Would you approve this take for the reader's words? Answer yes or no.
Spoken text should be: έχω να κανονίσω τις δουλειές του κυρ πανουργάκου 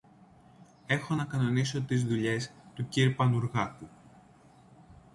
yes